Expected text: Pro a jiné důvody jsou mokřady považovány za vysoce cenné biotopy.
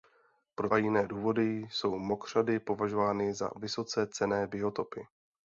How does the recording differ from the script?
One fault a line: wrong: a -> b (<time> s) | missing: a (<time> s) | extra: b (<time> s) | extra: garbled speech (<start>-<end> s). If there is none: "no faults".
no faults